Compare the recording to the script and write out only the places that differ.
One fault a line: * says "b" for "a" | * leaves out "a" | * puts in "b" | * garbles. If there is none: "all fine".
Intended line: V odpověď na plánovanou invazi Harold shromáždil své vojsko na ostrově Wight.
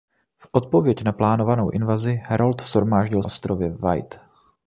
* leaves out "své vojsko na"